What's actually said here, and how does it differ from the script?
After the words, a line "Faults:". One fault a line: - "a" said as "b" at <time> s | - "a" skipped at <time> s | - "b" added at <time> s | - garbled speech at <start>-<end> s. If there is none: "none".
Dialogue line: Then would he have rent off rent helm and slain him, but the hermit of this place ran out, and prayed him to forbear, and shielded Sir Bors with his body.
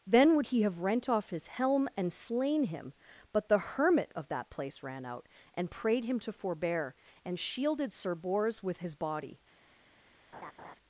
Then would he have rent off his helm and slain him, but the hermit of that place ran out, and prayed him to forbear, and shielded Sir Bors with his body.
Faults:
- "rent" said as "his" at 1.3 s
- "this" said as "that" at 4.3 s